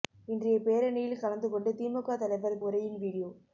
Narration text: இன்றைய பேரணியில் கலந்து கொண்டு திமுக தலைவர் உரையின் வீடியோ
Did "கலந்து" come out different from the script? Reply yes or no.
no